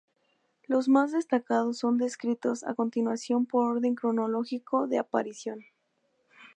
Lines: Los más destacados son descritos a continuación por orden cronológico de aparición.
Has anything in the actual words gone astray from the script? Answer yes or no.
no